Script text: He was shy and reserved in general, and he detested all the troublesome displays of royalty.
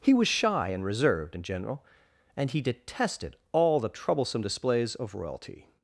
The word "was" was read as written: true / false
true